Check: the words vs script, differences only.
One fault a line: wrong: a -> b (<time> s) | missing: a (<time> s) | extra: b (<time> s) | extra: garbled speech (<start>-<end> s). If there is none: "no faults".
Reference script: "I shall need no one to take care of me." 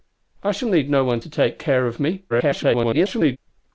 extra: garbled speech (2.3-3.4 s)